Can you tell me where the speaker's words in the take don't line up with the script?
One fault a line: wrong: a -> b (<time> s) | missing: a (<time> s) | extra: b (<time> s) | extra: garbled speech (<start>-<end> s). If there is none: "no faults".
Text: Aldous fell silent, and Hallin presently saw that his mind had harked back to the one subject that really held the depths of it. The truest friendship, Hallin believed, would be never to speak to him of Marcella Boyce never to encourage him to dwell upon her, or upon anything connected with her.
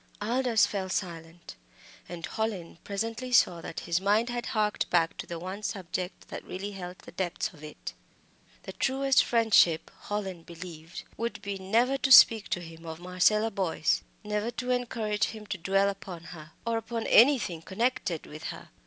no faults